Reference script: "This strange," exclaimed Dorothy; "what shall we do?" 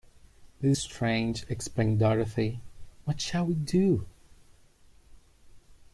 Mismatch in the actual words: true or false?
false